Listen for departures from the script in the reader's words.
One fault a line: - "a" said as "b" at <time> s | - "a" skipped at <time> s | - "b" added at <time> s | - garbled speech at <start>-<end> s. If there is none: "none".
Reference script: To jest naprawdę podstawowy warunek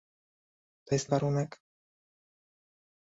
- "naprawdę podstawowy" skipped at 1.1 s